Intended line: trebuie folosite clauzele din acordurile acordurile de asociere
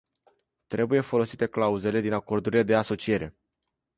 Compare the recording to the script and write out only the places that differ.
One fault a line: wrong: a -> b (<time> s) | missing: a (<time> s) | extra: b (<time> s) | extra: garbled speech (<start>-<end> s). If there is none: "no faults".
missing: acordurile (2.6 s)